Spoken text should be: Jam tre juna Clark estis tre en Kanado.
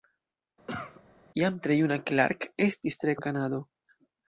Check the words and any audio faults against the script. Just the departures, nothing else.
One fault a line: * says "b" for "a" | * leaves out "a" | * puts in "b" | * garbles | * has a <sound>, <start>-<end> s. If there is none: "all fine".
* has a cough, 0.7-1.0 s